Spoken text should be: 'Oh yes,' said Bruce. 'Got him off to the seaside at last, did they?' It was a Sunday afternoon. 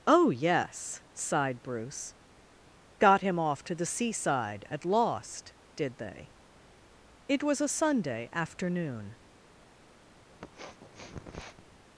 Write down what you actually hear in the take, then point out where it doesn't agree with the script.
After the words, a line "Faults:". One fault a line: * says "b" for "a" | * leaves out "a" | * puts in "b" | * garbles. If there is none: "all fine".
'Oh yes,' sighed Bruce. 'Got him off to the seaside at lost, did they?' It was a Sunday afternoon.
Faults:
* says "sighed" for "said"
* says "lost" for "last"